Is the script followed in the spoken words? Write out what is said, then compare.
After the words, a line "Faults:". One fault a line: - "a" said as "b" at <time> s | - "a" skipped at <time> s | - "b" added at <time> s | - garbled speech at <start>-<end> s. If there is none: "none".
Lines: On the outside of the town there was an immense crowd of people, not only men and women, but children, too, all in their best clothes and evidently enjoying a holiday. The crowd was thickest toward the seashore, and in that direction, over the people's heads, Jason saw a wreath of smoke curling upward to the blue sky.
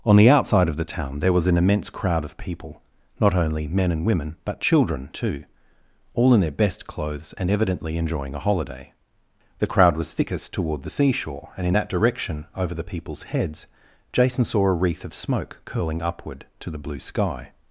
On the outside of the town there was an immense crowd of people, not only men and women, but children, too, all in their best clothes and evidently enjoying a holiday. The crowd was thickest toward the seashore, and in that direction, over the people's heads, Jason saw a wreath of smoke curling upward to the blue sky.
Faults:
none